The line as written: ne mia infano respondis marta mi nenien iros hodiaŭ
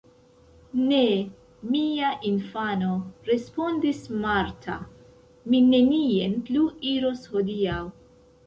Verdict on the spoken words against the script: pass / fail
fail